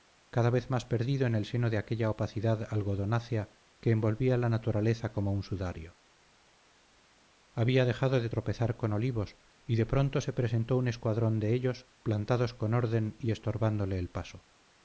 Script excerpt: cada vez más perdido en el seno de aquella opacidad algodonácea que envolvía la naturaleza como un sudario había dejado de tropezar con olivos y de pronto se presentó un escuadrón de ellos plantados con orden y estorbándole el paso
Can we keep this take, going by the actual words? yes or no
yes